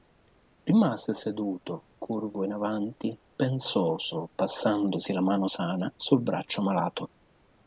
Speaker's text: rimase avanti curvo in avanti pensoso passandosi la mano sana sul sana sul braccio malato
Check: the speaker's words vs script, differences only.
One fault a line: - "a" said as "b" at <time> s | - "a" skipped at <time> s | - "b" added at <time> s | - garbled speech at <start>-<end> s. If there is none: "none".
- "avanti" said as "seduto" at 1.1 s
- "sana sul" skipped at 6.2 s